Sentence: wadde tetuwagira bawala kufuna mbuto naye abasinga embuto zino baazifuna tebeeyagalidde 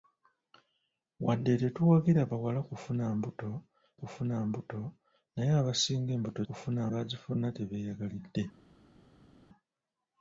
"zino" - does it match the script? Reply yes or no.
no